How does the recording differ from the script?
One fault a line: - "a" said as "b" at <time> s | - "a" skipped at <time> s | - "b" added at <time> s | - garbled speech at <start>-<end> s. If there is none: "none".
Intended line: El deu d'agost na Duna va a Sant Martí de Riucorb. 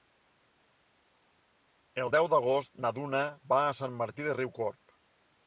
none